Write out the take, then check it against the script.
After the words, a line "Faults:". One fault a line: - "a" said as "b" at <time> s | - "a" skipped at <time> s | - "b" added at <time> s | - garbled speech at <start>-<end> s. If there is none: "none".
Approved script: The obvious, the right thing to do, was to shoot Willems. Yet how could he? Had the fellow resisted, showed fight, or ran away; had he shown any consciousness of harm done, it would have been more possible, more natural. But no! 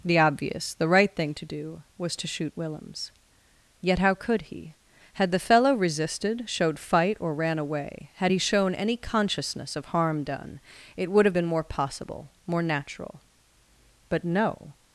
The obvious, the right thing to do, was to shoot Willems. Yet how could he? Had the fellow resisted, showed fight, or ran away; had he shown any consciousness of harm done, it would have been more possible, more natural. But no!
Faults:
none